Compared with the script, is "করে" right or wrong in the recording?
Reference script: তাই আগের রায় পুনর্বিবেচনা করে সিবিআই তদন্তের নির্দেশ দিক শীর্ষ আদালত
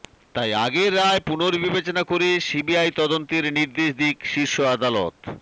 right